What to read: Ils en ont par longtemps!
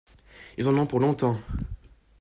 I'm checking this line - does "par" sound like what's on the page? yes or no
no